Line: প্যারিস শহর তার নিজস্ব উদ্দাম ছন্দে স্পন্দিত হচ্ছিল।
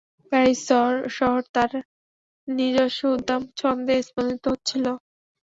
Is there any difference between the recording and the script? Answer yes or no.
no